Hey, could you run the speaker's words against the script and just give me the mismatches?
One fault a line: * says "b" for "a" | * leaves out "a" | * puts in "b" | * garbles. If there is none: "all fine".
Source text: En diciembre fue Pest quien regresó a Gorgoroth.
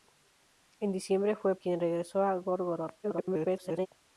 * leaves out "Pest"
* garbles